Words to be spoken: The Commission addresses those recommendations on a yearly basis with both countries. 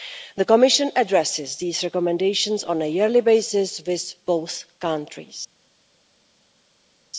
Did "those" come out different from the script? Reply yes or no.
yes